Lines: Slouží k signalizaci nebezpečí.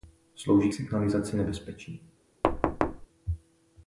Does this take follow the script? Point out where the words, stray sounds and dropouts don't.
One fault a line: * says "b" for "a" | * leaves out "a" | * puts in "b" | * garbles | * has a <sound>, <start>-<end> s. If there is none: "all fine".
* has a thud, 2.4-3.1 s